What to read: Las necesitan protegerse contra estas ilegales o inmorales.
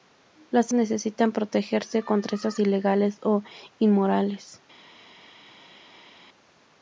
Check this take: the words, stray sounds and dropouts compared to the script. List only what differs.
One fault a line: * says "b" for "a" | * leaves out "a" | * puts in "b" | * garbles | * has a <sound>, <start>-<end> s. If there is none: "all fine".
all fine